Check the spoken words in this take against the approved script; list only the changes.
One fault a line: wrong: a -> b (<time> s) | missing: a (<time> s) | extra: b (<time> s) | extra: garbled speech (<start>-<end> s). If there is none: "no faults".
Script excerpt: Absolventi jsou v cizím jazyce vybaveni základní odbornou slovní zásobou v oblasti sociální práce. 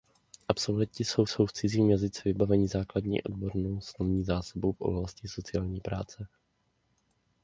extra: jsou (1.2 s)